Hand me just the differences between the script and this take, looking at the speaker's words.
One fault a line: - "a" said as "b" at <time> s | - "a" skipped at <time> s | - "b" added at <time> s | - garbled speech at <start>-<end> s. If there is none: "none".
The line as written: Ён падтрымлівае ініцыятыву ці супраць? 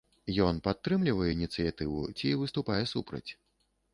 - "выступае" added at 2.4 s